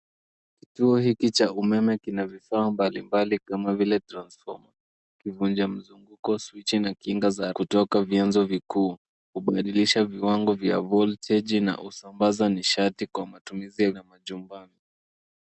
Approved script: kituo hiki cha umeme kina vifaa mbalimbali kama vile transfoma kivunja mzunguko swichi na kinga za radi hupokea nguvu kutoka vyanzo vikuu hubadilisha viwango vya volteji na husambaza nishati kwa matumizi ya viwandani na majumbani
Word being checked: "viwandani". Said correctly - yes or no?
no